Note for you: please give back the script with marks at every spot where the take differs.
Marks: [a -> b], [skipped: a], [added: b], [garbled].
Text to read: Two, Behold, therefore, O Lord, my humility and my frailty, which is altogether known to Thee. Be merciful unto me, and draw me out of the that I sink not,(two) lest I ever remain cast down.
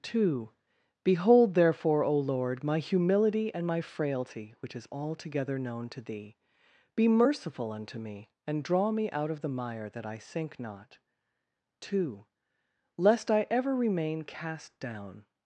Two, Behold, therefore, O Lord, my humility and my frailty, which is altogether known to Thee. Be merciful unto me, and draw me out of the [added: mire] that I sink not,(two) lest I ever remain cast down.